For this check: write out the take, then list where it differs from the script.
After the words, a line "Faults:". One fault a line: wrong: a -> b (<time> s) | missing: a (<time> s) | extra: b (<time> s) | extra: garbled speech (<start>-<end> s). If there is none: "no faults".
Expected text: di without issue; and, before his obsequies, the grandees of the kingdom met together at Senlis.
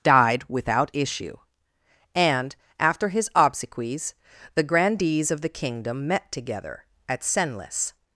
died without issue; and, after his obsequies, the grandees of the kingdom met together at Senlis.
Faults:
wrong: di -> died (0.0 s)
wrong: before -> after (2.8 s)